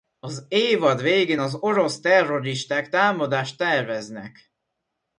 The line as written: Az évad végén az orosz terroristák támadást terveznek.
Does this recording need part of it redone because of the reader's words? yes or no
no